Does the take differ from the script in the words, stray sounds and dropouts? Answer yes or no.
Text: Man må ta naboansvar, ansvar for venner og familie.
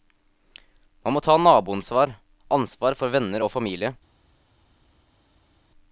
no